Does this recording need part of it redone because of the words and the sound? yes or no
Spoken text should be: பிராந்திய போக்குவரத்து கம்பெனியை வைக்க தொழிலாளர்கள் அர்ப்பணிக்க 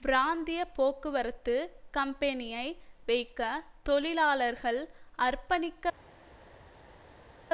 no